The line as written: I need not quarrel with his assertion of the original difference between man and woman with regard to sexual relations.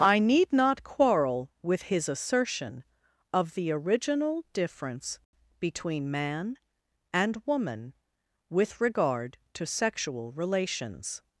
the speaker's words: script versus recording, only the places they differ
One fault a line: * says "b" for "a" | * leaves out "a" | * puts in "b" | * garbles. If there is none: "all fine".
all fine